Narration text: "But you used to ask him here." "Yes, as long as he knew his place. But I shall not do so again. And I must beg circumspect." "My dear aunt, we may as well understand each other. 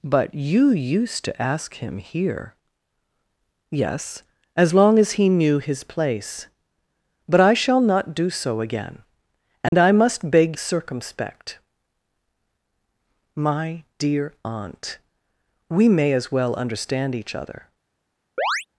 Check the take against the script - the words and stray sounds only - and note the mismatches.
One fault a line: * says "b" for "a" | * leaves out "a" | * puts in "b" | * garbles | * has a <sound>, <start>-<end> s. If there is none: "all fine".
* has a dropout, 9.7-9.7 s
* has a chirp, 18.4-18.7 s